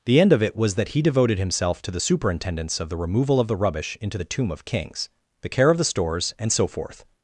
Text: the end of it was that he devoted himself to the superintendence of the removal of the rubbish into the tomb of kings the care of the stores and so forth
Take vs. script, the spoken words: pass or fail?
pass